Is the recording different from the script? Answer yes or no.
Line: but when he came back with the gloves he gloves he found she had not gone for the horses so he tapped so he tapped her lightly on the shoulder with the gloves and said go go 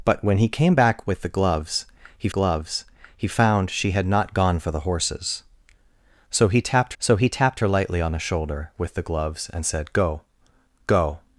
no